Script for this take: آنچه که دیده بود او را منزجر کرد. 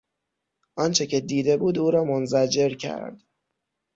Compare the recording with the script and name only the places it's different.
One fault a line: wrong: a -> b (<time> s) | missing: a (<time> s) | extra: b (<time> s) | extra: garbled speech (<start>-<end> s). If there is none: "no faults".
no faults